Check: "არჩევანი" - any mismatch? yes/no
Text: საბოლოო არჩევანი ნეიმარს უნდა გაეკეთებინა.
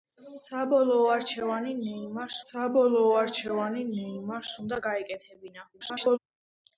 no